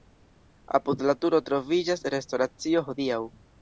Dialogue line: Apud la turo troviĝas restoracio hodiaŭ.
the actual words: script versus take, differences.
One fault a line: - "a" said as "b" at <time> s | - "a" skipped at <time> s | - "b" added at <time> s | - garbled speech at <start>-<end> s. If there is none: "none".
none